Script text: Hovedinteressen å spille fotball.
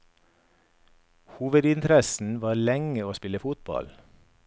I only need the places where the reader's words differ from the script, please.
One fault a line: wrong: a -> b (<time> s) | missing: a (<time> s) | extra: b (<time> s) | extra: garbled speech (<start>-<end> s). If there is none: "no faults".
extra: var lenge (2.4 s)